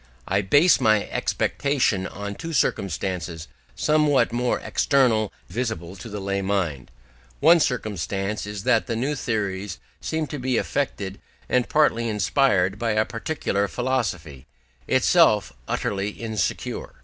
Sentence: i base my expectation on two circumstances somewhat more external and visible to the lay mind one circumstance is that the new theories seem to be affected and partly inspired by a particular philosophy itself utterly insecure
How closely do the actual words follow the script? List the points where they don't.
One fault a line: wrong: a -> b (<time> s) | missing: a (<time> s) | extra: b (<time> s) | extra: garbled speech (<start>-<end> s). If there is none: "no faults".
missing: and (5.3 s)